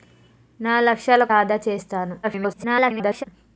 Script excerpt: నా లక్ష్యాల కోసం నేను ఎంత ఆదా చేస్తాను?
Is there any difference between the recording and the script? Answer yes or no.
yes